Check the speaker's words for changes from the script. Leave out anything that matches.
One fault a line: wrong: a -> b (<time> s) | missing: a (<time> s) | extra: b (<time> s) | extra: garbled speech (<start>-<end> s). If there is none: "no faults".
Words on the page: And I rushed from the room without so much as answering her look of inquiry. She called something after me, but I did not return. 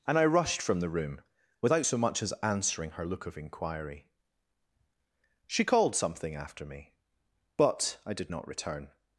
no faults